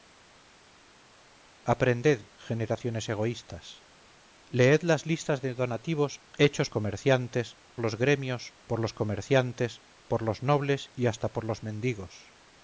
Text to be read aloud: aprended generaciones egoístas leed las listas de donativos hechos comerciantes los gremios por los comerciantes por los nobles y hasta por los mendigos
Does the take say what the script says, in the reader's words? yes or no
yes